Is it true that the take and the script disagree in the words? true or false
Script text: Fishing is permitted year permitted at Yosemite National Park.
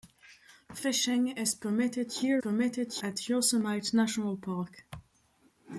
false